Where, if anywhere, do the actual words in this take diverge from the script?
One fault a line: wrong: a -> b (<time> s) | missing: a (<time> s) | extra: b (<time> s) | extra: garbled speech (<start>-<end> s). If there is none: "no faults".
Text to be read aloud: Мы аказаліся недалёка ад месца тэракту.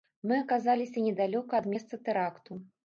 no faults